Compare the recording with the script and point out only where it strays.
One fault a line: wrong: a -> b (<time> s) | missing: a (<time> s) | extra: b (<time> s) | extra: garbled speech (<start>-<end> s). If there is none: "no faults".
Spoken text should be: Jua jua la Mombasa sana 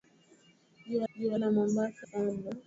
no faults